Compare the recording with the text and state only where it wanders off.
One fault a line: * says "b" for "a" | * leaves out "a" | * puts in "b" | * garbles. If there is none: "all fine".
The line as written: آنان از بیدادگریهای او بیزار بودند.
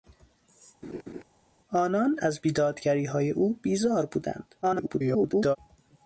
* garbles